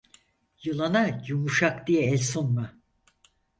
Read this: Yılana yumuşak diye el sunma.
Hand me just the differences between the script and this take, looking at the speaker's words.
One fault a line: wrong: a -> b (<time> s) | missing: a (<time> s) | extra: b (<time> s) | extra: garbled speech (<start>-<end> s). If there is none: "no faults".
no faults